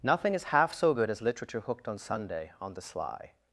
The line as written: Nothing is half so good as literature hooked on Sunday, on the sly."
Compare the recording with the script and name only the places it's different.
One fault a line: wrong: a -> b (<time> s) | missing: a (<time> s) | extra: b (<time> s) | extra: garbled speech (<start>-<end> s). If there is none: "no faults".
no faults